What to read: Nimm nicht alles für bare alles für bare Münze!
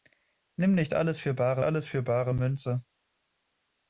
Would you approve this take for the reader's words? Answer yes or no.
yes